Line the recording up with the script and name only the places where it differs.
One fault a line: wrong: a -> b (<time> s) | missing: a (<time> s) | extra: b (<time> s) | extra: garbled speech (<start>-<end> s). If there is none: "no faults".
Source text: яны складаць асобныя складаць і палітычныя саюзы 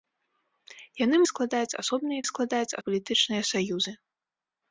no faults